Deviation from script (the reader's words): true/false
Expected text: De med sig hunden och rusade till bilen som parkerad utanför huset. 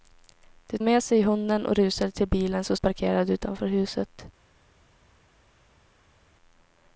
false